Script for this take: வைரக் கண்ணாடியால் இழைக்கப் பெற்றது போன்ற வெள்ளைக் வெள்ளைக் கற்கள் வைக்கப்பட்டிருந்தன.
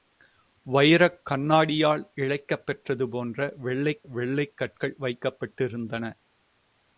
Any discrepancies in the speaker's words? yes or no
no